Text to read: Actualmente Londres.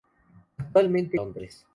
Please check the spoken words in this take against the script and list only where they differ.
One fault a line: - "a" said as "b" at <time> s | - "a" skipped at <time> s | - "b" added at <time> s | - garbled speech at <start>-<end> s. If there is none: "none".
none